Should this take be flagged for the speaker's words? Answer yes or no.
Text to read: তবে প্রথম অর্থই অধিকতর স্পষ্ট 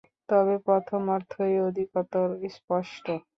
no